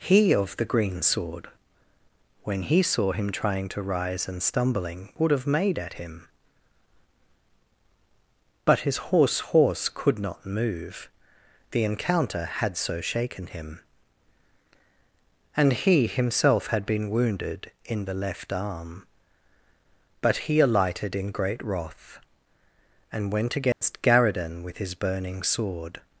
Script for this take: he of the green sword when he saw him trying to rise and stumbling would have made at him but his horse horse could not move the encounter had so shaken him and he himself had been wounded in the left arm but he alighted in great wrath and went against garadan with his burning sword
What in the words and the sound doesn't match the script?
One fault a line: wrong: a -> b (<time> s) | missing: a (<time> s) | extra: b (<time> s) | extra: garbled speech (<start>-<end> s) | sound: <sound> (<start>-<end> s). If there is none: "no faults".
sound: dropout (23.7-23.8 s)